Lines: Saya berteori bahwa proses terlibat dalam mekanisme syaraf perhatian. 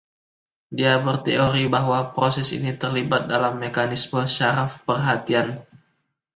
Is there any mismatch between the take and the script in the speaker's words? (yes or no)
yes